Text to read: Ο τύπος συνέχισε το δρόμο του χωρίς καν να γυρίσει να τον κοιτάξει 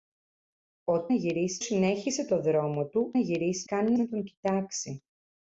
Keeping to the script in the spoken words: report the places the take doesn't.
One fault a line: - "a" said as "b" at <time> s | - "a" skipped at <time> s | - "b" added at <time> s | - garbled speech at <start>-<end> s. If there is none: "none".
- "τύπος" said as "γυρίσει" at 1.1 s
- "χωρίς" said as "γυρίσει" at 3.2 s
- "γυρίσει" skipped at 4.0 s